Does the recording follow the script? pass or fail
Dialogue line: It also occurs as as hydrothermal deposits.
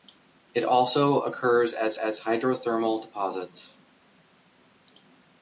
pass